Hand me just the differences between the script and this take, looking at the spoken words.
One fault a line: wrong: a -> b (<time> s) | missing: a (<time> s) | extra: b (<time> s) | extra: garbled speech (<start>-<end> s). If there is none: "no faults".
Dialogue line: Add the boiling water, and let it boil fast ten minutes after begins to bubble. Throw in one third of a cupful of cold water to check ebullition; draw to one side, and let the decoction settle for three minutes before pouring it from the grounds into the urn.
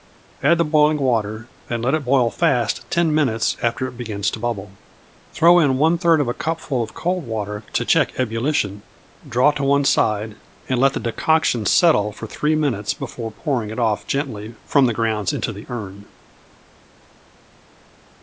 extra: it (3.9 s)
extra: off gently (13.8 s)